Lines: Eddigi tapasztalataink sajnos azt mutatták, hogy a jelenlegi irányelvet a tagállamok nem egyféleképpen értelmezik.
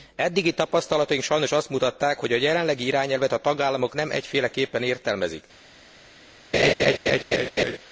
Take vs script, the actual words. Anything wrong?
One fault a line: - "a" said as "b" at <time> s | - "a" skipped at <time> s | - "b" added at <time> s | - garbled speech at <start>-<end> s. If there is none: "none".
none